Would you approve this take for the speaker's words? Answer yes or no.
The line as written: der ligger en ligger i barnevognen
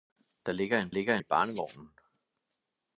yes